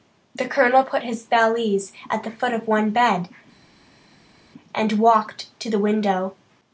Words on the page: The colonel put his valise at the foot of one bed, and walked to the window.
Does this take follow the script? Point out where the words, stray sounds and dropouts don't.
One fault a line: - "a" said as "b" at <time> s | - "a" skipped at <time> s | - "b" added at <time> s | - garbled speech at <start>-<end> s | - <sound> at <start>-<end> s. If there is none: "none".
none